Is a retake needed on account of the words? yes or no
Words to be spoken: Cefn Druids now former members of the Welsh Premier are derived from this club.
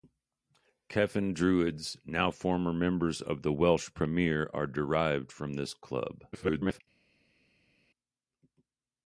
yes